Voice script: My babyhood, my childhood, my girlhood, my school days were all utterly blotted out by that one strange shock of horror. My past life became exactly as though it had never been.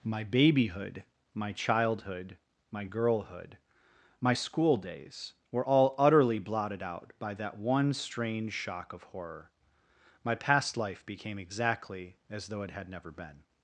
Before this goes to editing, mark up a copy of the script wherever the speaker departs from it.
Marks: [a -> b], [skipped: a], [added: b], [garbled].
My babyhood, my childhood, my girlhood, my school days were all utterly blotted out by that one strange shock of horror. My past life became exactly as though it had never been.